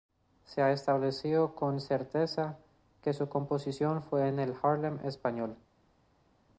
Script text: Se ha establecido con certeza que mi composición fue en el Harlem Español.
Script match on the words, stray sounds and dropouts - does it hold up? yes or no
no